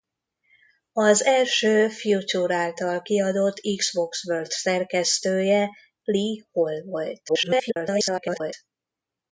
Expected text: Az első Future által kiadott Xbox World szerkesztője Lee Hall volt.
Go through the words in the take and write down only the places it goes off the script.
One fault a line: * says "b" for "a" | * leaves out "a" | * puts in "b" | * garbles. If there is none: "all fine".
* garbles